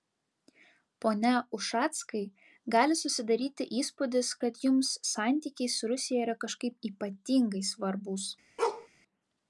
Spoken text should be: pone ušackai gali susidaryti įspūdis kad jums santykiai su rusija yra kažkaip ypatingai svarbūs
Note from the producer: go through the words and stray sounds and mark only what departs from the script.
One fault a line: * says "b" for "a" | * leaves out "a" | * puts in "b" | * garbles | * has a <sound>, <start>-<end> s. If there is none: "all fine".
* has a bark, 8.6-8.9 s